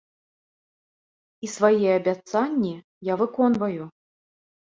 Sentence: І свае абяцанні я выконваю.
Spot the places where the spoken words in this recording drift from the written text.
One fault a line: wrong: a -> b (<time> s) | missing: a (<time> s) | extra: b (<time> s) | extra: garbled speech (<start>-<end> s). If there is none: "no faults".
no faults